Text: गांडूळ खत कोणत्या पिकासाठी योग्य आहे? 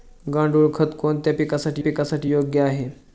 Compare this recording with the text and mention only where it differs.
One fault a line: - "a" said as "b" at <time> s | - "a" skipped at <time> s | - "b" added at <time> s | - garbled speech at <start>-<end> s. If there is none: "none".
- "पिकासाठी" added at 1.8 s